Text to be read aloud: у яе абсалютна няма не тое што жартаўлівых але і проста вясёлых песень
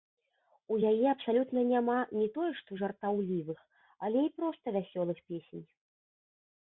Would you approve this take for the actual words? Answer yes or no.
yes